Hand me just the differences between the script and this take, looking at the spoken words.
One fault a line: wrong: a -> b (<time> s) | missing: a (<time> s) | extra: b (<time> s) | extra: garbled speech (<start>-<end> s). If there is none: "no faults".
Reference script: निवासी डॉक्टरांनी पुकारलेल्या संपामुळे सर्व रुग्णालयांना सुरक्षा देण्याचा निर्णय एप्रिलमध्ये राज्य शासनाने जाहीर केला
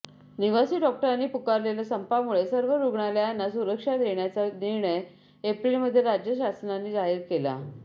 no faults